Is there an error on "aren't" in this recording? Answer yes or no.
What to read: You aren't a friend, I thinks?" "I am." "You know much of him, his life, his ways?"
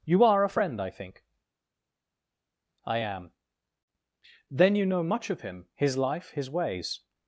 yes